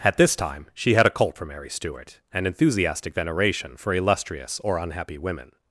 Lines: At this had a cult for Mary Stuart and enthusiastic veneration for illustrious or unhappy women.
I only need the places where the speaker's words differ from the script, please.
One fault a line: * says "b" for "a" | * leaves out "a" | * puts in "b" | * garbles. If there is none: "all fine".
* puts in "time she"